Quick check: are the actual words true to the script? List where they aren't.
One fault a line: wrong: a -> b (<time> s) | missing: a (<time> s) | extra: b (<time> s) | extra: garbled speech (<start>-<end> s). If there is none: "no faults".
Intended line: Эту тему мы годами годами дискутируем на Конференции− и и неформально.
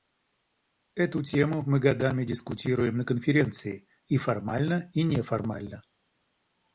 missing: годами (2.2 s)
extra: формально (4.2 s)